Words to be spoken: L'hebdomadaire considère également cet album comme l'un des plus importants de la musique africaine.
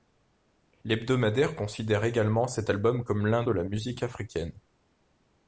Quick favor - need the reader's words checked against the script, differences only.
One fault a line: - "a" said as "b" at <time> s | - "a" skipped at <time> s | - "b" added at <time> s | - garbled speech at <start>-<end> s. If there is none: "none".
- "des plus importants" skipped at 3.4 s